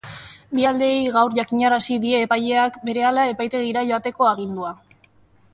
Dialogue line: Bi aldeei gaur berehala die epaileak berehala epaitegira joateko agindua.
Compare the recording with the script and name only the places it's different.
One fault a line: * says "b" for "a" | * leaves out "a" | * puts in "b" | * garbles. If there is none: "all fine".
* says "jakinarazi" for "berehala"